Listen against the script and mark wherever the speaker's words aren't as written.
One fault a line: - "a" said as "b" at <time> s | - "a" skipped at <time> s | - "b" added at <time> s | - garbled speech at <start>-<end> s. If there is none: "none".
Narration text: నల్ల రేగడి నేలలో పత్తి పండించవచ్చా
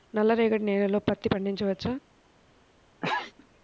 none